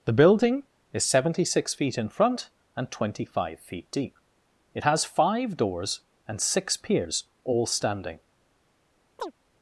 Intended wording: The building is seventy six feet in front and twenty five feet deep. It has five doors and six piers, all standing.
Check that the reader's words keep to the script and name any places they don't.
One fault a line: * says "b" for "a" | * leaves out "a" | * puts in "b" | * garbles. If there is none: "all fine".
all fine